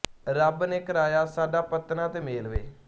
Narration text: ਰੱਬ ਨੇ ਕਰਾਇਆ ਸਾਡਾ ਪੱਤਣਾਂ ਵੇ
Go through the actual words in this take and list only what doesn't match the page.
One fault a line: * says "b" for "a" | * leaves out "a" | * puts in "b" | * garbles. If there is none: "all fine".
* puts in "ਤੇ ਮੇਲ"